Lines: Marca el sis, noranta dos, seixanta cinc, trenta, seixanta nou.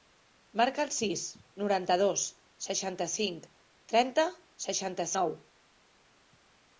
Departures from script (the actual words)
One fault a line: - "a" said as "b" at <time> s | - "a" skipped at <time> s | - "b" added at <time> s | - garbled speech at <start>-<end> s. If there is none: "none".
none